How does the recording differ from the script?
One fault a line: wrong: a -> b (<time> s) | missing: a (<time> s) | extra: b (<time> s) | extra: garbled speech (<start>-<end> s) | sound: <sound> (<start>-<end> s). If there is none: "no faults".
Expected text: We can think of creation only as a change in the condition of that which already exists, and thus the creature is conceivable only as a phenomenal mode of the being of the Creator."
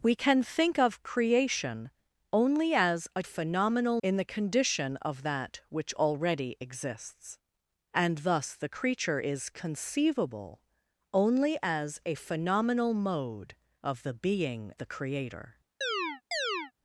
wrong: change -> phenomenal (3.2 s)
missing: of (14.7 s)
sound: chirp (15.8-16.7 s)